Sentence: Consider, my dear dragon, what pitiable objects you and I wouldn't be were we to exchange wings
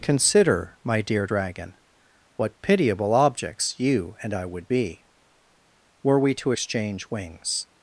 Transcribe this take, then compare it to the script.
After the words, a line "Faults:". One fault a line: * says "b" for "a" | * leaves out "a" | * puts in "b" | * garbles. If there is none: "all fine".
Consider, my dear dragon, what pitiable objects you and I would be were we to exchange wings
Faults:
* says "would" for "wouldn't"